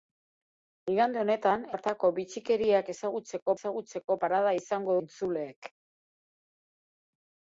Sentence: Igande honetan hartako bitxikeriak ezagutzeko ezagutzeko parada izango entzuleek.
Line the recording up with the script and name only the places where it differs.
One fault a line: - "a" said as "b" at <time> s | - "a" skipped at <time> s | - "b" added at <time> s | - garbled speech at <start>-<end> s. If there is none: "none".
none